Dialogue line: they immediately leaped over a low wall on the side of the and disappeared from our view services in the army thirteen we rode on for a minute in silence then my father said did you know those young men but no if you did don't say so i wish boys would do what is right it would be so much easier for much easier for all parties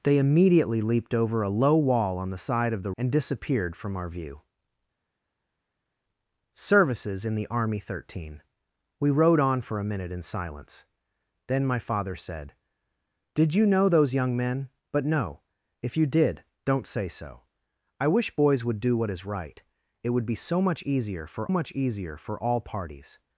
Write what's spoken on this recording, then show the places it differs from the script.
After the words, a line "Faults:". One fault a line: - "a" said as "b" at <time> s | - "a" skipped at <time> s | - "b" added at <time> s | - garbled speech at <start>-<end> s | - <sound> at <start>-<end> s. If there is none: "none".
they immediately leaped over a low wall on the side of the and disappeared from our view services in the army thirteen we rode on for a minute in silence then my father said did you know those young men but no if you did don't say so i wish boys would do what is right it would be so much easier for much easier for all parties
Faults:
none